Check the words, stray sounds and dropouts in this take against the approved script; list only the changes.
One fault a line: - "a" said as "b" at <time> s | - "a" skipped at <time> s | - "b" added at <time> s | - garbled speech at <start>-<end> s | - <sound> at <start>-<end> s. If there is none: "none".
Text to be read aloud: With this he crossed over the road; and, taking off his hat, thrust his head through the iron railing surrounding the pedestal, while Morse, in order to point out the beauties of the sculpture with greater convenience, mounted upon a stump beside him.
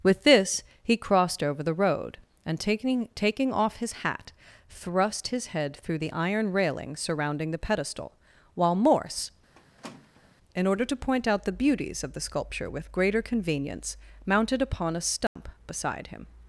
- "taking" added at 3.1 s
- squeak at 9.5-10.4 s
- dropout at 15.3-15.4 s